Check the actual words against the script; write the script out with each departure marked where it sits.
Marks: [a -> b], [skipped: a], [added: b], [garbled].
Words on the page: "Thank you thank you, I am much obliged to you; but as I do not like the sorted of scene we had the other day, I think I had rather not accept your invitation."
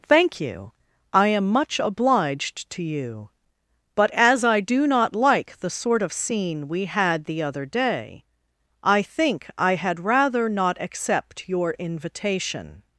"Thank you [skipped: thank you,] I am much obliged to you; but as I do not like the [sorted -> sort] of scene we had the other day, I think I had rather not accept your invitation."